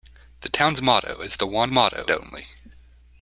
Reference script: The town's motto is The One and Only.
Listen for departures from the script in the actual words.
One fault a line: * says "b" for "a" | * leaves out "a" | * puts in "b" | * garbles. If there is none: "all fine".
* says "motto" for "and"